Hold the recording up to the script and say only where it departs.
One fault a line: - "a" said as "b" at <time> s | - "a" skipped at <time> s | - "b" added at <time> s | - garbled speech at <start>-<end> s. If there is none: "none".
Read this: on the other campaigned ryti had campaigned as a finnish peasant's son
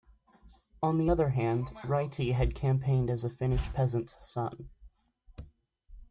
- "campaigned" said as "hand" at 1.3 s